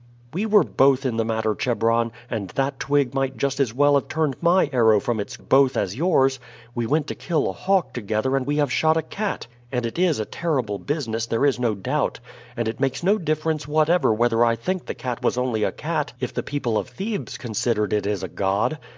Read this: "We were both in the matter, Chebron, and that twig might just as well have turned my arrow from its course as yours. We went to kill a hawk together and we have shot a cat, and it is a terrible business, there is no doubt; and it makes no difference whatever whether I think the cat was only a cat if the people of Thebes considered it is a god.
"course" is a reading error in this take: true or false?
true